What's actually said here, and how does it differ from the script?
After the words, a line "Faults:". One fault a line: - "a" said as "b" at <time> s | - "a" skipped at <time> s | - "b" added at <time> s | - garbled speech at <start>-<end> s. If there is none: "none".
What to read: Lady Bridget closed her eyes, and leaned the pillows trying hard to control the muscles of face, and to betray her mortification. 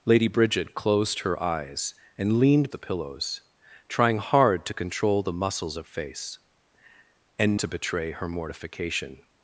Lady Bridget closed her eyes, and leaned the pillows trying hard to control the muscles of face, and to betray her mortification.
Faults:
none